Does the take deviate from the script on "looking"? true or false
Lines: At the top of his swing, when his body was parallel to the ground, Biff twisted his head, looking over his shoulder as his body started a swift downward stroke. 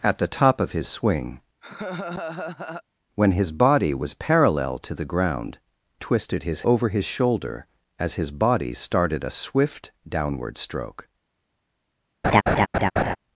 true